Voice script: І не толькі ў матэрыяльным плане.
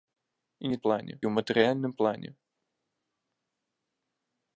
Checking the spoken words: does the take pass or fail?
fail